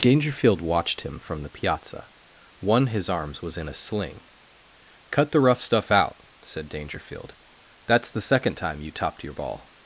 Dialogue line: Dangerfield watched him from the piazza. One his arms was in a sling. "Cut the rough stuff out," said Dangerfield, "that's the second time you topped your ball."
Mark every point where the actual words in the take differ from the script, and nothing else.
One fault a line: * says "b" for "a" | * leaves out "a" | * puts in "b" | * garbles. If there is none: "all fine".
all fine